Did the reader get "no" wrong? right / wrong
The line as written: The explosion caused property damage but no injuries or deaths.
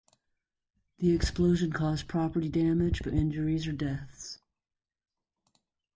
wrong